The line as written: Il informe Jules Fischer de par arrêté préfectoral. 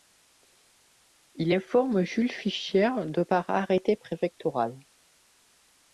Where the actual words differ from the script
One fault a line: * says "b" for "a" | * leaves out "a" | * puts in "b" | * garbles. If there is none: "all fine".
all fine